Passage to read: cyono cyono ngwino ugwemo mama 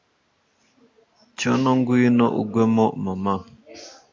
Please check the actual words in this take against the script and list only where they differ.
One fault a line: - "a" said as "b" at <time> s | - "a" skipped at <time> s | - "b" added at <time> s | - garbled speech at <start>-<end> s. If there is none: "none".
- "cyono" skipped at 1.7 s